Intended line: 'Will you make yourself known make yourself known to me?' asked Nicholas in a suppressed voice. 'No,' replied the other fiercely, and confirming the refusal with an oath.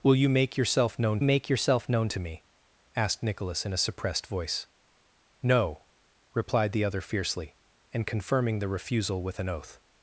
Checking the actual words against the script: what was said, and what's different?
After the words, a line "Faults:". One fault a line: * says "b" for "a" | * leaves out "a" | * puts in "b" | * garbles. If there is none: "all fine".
'Will you make yourself known make yourself known to me?' asked Nicholas in a suppressed voice. 'No,' replied the other fiercely, and confirming the refusal with an oath.
Faults:
all fine